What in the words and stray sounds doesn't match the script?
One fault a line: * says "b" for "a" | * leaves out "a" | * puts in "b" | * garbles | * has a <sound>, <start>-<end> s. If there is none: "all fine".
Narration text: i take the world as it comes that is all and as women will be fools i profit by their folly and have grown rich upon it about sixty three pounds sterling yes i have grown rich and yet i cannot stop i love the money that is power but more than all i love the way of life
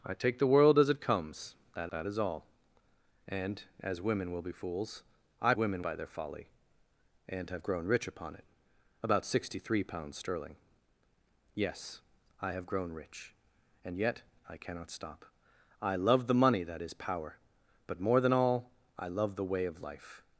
* puts in "that"
* says "women" for "profit"